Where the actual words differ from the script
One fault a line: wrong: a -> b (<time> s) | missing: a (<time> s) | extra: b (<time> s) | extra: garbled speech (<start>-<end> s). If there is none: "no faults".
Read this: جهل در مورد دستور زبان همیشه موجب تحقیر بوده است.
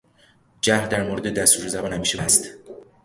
missing: موجب تحقیر بوده (2.2 s)